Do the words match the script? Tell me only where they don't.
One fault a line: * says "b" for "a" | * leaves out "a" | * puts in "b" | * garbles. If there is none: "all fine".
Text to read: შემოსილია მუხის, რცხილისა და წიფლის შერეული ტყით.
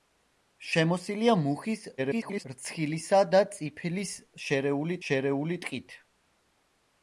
* garbles
* puts in "შერეული"